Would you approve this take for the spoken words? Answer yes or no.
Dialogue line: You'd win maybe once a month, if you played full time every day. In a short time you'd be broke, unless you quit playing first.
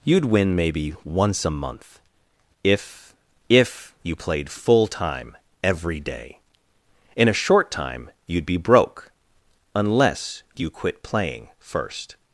no